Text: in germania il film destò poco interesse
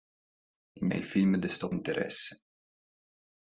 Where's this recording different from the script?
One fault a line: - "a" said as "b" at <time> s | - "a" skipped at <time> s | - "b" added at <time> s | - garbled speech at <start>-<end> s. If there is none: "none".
- "germania" skipped at 0.9 s
- "poco" skipped at 1.7 s